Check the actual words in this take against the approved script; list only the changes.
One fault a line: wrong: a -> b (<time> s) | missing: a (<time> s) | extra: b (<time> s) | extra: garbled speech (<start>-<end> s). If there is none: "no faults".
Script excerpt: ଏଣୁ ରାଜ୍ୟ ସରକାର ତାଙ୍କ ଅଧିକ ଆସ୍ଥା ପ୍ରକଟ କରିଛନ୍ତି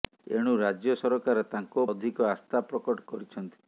no faults